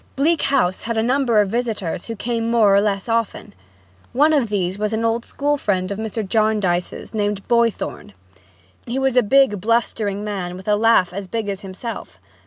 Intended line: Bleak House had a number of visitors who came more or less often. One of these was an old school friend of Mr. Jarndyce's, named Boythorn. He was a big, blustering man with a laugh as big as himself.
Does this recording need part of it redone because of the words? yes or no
no